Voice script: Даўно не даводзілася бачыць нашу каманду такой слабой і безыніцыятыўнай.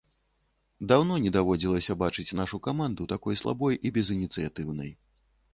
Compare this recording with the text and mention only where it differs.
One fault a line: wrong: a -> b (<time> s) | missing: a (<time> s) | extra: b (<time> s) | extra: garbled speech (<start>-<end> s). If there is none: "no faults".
no faults